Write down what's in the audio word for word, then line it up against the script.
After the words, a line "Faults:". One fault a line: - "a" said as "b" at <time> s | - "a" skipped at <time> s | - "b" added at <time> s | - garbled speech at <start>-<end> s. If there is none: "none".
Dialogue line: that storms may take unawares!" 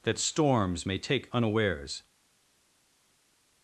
that storms may take unawares!"
Faults:
none